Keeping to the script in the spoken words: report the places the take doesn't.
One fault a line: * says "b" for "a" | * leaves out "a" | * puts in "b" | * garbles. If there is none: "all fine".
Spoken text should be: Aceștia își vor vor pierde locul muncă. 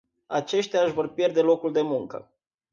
* leaves out "vor"
* puts in "de"